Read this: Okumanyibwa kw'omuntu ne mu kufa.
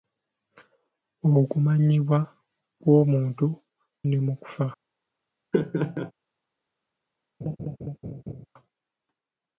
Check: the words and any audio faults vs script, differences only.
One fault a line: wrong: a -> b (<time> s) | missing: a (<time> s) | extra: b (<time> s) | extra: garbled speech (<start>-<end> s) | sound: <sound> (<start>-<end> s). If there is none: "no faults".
sound: laugh (5.5-6.1 s)
sound: laugh (7.4-8.5 s)